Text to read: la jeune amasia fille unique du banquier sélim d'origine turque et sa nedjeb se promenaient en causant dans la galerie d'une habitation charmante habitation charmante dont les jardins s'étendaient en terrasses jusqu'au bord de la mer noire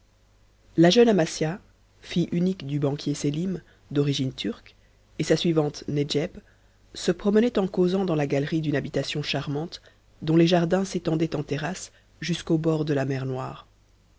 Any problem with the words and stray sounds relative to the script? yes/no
yes